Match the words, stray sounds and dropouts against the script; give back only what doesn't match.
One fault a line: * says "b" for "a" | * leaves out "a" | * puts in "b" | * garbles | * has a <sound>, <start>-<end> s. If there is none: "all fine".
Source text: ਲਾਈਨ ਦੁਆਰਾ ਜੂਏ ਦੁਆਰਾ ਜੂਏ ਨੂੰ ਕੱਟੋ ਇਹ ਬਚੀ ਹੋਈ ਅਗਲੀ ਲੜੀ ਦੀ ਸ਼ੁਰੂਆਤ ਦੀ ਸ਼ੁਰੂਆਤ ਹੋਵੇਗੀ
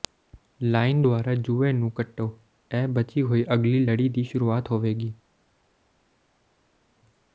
* leaves out "ਦੁਆਰਾ ਜੂਏ"
* leaves out "ਦੀ ਸ਼ੁਰੂਆਤ"